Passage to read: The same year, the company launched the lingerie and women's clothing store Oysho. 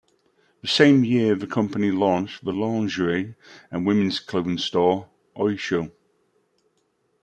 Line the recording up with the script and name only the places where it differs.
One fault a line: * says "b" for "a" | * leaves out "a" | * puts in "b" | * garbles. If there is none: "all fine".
all fine